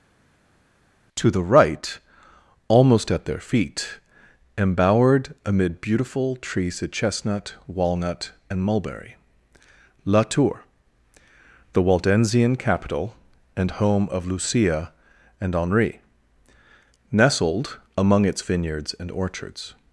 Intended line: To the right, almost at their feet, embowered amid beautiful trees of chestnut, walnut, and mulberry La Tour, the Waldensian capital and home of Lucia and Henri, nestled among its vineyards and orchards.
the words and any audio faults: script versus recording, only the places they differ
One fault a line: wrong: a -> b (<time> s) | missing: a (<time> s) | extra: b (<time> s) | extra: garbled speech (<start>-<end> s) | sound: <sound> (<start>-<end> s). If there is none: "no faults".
no faults